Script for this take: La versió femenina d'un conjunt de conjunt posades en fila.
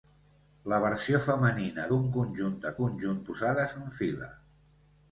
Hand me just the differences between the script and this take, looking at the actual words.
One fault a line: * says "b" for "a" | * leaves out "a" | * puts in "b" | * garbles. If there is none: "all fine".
all fine